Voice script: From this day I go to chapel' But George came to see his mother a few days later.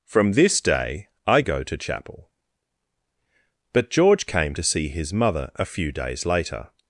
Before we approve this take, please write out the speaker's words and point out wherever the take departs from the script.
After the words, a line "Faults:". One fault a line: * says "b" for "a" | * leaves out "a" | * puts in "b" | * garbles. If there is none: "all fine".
From this day I go to chapel' But George came to see his mother a few days later.
Faults:
all fine